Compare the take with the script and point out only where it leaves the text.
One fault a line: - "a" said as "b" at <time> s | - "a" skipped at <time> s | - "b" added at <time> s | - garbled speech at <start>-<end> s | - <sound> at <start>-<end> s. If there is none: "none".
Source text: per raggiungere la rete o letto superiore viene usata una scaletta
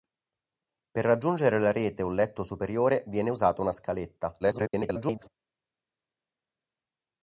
- garbled speech at 4.4-5.3 s